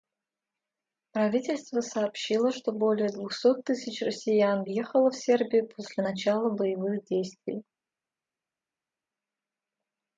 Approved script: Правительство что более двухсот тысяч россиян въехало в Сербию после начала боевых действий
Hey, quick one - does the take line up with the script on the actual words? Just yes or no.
no